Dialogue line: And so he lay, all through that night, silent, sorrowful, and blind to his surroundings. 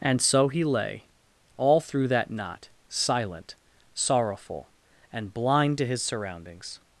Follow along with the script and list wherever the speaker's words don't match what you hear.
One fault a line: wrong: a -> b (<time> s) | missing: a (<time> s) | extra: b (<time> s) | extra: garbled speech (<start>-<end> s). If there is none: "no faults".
wrong: night -> knot (2.3 s)